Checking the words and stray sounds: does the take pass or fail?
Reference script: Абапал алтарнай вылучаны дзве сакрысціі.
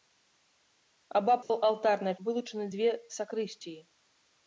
fail